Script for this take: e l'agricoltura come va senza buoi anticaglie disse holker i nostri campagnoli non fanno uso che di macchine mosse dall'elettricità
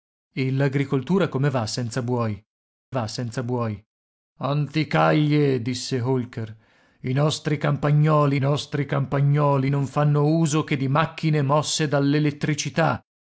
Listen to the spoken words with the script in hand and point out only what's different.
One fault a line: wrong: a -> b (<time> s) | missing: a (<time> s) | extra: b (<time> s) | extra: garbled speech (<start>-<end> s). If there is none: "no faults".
extra: va senza buoi (2.9 s)
extra: nostri campagnoli (8.4 s)